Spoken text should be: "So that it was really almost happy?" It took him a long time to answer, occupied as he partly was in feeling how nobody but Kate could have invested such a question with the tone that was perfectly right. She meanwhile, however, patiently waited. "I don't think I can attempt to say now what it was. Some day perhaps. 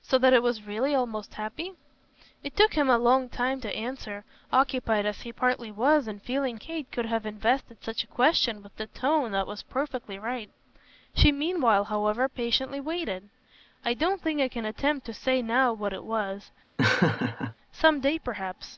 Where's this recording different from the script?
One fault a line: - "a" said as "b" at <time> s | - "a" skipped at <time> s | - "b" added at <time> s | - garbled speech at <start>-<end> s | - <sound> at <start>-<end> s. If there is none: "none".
- "how nobody but" skipped at 6.6 s
- laugh at 16.8-17.5 s